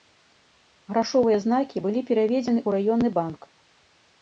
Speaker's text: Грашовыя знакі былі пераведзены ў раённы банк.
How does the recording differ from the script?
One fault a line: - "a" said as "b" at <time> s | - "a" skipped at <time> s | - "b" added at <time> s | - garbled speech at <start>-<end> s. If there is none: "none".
none